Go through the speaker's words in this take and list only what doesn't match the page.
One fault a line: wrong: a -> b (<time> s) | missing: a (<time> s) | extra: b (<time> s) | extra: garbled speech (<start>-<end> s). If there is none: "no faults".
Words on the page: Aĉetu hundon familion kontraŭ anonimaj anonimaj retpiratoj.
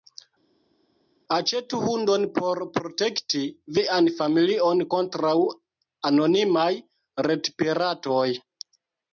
extra: por protekti vian (2.4 s)
missing: anonimaj (6.7 s)